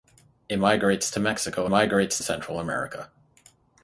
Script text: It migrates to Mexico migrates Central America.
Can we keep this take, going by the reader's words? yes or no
yes